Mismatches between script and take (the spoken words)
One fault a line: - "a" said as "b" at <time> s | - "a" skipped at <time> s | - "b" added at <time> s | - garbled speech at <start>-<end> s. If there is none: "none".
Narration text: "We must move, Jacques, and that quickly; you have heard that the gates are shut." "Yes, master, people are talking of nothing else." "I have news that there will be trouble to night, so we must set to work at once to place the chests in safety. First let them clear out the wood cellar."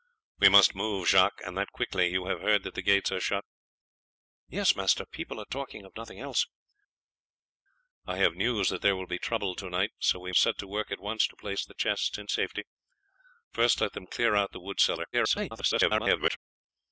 - "must" skipped at 10.3 s
- garbled speech at 15.1-16.4 s